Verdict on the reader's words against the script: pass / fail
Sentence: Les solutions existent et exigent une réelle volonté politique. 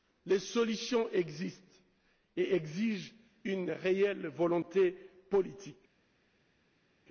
pass